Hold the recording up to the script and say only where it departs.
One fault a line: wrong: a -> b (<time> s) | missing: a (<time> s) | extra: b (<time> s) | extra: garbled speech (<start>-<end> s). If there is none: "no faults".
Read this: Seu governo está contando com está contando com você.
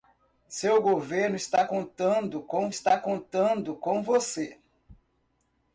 no faults